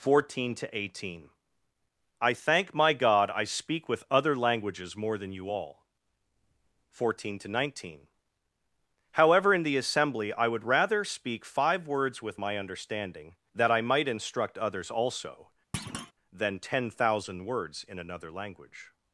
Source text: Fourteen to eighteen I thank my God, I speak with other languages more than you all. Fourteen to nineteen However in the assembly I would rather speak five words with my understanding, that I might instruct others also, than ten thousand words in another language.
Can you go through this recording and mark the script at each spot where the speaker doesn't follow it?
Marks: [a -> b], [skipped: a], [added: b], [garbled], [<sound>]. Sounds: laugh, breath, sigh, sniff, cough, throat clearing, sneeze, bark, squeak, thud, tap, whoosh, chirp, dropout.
Fourteen to eighteen I thank my God, I speak with other languages more than you all. Fourteen to nineteen However in the assembly I would rather speak five words with my understanding, that I might instruct others also, [thud] than ten thousand words in another language.